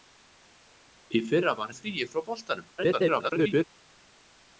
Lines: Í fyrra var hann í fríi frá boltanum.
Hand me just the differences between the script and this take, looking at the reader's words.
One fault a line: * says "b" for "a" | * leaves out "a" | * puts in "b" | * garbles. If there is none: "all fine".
* leaves out "hann"
* garbles